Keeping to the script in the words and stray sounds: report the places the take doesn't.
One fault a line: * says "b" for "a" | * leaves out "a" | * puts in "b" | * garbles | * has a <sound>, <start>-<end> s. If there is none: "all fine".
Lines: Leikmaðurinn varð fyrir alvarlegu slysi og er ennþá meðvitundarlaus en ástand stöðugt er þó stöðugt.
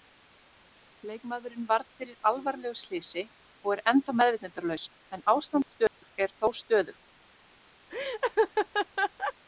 * has a dropout, 5.9-6.0 s
* has a laugh, 7.9-9.3 s